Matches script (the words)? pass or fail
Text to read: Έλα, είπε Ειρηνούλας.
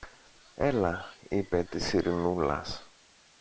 fail